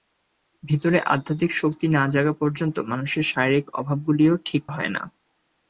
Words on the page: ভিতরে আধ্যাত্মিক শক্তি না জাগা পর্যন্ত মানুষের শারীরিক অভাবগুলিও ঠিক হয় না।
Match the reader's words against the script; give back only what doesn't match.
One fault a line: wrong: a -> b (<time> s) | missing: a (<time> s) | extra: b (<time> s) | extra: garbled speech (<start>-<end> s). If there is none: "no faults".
no faults